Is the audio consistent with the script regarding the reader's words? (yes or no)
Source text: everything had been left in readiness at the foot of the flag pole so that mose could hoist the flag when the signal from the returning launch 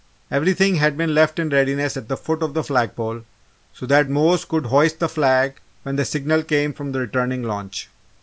no